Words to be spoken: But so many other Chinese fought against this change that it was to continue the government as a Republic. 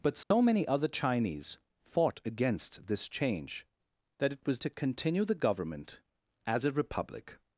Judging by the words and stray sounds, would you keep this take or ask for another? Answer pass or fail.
fail